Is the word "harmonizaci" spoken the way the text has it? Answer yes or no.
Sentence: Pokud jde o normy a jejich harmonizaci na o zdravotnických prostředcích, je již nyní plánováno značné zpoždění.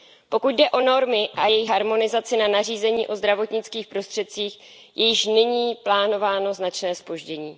yes